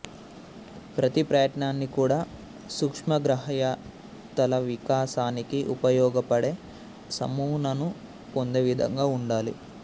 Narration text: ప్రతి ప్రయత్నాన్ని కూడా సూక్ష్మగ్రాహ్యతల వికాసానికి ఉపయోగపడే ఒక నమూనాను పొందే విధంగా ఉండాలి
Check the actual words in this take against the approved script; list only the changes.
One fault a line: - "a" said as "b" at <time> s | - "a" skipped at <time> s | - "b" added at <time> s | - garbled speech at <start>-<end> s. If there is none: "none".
- "ఒక" skipped at 6.5 s